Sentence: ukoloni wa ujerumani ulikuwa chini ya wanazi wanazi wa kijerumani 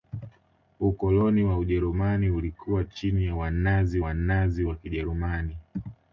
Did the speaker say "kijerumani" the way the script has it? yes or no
yes